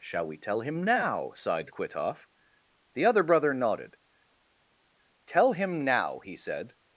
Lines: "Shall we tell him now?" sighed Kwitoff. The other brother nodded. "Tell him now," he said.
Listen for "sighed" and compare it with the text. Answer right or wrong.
right